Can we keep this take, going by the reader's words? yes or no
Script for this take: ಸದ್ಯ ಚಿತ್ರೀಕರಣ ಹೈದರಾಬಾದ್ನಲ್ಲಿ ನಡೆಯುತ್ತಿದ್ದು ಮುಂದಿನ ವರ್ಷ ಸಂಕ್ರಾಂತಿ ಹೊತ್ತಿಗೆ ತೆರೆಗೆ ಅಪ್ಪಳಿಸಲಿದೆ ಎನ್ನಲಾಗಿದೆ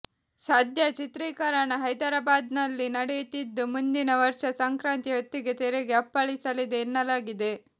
yes